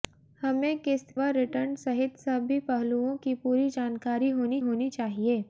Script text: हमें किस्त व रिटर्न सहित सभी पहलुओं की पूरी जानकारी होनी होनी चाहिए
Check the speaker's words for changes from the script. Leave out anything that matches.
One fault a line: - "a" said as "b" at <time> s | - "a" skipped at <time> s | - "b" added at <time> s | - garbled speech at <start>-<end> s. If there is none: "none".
none